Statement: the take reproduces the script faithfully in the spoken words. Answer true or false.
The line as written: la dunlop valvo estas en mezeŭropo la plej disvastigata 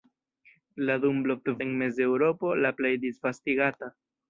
false